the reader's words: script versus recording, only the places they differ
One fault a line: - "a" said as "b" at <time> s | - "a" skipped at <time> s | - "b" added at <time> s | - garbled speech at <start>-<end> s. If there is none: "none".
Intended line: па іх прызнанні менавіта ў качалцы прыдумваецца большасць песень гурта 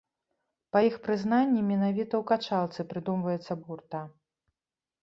- "большасць песень" skipped at 3.6 s